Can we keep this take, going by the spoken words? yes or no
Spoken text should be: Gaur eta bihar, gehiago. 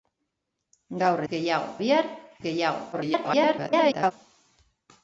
no